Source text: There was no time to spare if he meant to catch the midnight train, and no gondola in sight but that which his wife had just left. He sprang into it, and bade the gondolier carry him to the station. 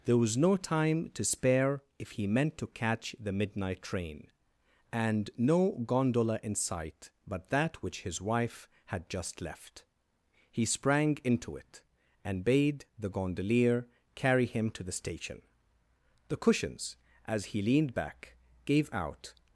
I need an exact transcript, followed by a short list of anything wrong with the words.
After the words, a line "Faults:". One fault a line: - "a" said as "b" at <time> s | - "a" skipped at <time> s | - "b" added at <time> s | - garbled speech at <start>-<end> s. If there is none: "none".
There was no time to spare if he meant to catch the midnight train, and no gondola in sight but that which his wife had just left. He sprang into it, and bade the gondolier carry him to the station. The cushions, as he leaned back, gave out
Faults:
- "The cushions as he leaned back gave out" added at 16.3 s